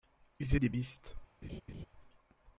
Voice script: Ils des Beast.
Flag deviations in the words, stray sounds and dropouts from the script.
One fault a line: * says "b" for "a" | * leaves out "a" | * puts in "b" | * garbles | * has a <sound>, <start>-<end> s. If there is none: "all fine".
* has a laugh, 1.4-1.9 s